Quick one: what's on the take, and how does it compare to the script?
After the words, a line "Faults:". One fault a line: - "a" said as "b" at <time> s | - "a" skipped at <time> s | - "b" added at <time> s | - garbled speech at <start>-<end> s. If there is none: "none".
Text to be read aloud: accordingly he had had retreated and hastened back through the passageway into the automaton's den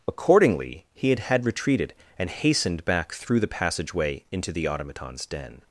accordingly he had had retreated and hastened back through the passageway into the automaton's den
Faults:
none